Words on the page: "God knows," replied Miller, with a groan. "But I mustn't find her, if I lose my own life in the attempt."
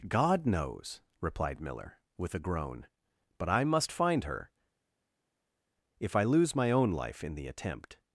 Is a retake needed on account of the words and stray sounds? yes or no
yes